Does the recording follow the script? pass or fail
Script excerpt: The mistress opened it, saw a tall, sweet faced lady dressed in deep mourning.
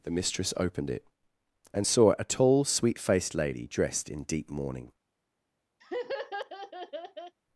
fail